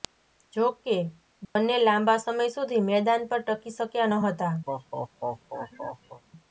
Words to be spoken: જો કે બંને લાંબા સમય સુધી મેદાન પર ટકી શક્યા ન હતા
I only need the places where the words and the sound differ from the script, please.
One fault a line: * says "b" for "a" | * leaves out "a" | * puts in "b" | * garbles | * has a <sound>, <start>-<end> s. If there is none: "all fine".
* has a dropout, 1.4-1.6 s
* has a laugh, 4.7-6.2 s